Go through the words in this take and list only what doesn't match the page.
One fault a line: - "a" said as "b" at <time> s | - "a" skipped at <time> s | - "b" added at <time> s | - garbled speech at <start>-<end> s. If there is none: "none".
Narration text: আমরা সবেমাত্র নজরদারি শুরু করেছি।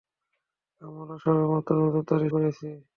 - "শুরু" skipped at 2.3 s